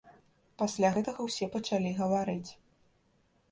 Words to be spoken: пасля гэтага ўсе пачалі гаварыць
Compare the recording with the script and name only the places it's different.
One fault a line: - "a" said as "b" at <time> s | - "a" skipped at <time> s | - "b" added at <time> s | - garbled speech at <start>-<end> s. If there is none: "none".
none